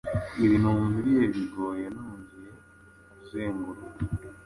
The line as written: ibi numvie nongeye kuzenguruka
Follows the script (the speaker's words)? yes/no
no